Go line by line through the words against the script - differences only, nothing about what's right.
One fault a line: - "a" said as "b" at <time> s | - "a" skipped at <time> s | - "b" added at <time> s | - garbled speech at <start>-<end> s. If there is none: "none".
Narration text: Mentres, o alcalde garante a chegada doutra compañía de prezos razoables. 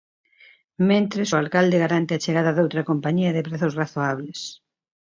none